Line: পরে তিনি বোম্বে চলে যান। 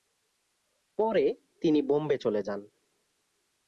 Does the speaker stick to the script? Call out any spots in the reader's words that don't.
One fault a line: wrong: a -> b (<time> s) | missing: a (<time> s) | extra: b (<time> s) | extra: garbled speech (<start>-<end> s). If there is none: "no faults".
no faults